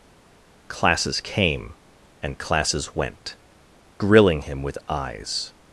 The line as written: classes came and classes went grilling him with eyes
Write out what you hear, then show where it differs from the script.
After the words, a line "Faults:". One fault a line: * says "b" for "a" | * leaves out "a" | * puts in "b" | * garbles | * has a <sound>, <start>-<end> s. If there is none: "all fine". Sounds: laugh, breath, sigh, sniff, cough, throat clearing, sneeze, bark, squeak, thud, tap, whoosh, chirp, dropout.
classes came and classes went grilling him with eyes
Faults:
all fine